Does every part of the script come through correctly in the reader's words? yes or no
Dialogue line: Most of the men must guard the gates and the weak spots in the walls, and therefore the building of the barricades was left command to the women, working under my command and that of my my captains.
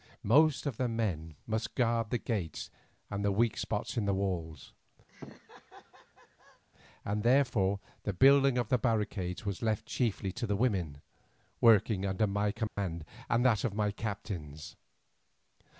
no